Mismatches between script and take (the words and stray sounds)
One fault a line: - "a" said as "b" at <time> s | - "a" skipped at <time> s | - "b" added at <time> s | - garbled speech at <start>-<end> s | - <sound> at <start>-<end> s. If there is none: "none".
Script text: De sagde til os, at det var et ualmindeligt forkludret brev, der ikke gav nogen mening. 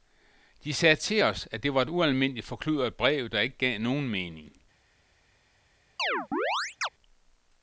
- chirp at 6.0-6.9 s